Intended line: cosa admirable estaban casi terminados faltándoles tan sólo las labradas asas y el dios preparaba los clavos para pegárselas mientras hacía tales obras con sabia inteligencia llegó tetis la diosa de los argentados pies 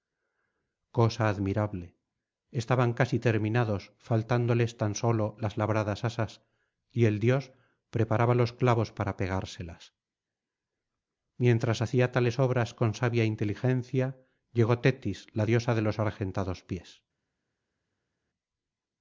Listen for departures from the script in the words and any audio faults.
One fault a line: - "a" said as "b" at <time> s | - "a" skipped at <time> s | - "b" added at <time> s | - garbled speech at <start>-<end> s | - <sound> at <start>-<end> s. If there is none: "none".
none